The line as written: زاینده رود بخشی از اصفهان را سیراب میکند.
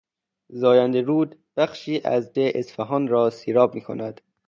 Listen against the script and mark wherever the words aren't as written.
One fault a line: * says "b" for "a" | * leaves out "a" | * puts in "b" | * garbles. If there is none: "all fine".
all fine